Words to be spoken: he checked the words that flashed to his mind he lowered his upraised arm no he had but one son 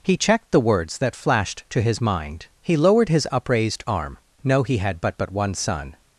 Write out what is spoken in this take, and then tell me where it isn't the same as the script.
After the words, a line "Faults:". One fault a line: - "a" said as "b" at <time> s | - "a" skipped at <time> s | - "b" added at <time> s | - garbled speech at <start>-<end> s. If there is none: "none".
he checked the words that flashed to his mind he lowered his upraised arm no he had but but one son
Faults:
- "but" added at 5.2 s